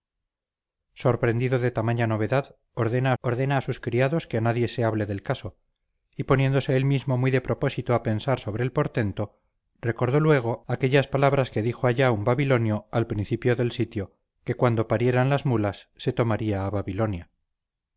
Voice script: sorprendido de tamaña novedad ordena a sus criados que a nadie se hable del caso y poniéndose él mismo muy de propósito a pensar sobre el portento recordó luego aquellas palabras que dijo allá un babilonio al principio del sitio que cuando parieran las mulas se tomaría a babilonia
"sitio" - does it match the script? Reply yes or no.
yes